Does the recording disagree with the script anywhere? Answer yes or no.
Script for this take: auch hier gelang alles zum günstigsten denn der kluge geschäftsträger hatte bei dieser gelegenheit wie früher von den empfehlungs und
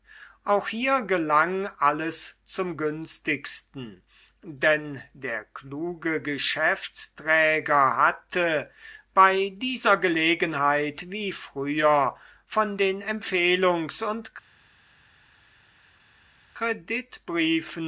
no